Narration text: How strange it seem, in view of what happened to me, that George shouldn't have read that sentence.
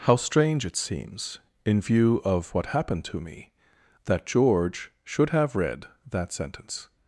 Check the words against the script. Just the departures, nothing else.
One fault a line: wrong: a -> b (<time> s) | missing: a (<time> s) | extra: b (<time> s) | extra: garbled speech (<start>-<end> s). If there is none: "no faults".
wrong: seem -> seems (0.8 s)
wrong: shouldn't -> should (5.0 s)